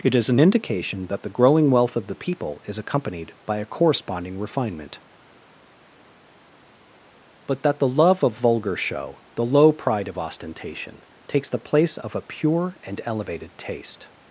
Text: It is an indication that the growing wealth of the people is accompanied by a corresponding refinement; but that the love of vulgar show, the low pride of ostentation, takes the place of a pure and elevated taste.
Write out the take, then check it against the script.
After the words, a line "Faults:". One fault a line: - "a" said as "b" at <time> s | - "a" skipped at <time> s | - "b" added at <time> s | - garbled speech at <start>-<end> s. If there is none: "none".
It is an indication that the growing wealth of the people is accompanied by a corresponding refinement; but that the love of vulgar show, the low pride of ostentation, takes the place of a pure and elevated taste.
Faults:
none